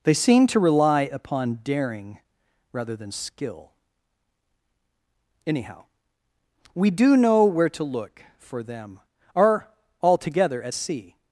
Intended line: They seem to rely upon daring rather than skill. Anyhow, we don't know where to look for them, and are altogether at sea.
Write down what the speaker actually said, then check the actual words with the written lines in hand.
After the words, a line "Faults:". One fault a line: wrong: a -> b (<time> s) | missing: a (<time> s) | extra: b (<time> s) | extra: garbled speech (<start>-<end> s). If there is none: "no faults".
They seem to rely upon daring rather than skill. Anyhow, we do know where to look for them, are altogether at sea.
Faults:
wrong: don't -> do (6.9 s)
missing: and (9.0 s)